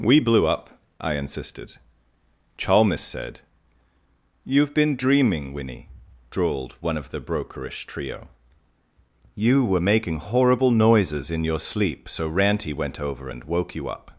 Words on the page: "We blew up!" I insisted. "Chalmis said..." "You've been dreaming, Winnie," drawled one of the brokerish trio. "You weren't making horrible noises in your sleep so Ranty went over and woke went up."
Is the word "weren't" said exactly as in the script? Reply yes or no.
no